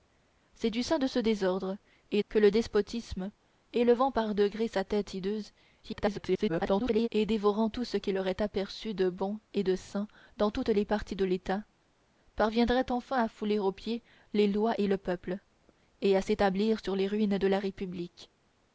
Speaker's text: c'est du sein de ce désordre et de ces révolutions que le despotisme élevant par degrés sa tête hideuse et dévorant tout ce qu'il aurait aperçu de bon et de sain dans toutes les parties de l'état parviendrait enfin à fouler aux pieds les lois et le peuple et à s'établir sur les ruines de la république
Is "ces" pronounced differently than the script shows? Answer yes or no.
yes